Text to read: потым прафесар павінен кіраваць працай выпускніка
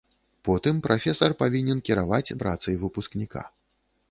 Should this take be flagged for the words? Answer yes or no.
no